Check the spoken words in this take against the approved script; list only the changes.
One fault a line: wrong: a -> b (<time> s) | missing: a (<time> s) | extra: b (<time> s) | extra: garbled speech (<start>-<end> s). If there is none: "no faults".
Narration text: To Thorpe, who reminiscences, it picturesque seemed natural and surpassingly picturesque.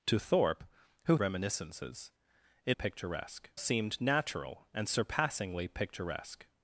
no faults